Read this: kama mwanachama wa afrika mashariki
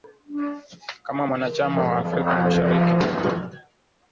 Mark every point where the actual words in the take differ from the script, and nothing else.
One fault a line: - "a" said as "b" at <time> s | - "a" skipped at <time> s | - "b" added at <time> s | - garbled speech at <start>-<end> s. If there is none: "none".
none